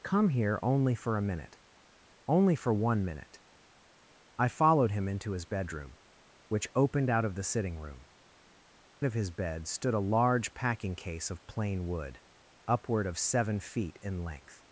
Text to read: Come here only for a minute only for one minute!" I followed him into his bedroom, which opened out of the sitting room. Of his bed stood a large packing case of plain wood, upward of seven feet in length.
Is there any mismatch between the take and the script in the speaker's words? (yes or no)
no